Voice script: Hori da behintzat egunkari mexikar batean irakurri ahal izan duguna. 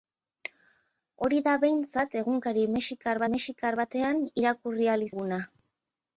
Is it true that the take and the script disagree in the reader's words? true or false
true